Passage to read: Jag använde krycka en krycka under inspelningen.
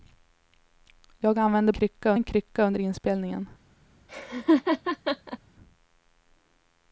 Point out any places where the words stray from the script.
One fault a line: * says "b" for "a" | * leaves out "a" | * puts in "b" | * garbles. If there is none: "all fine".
all fine